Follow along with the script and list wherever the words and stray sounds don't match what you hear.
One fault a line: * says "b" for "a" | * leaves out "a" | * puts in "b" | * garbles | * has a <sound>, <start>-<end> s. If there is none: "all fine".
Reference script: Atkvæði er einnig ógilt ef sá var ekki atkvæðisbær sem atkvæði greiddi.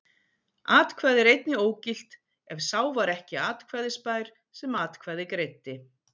all fine